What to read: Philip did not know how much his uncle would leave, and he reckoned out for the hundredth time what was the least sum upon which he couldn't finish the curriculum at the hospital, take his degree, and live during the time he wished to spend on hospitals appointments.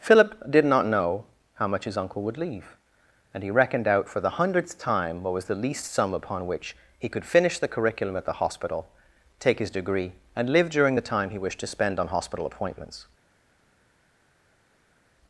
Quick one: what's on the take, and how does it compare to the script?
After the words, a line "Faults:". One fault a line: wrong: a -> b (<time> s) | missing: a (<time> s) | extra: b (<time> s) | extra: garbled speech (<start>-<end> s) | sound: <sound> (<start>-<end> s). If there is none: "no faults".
Philip did not know how much his uncle would leave, and he reckoned out for the hundredth time what was the least sum upon which he could finish the curriculum at the hospital, take his degree, and live during the time he wished to spend on hospital appointments.
Faults:
wrong: couldn't -> could (7.1 s)
wrong: hospitals -> hospital (12.1 s)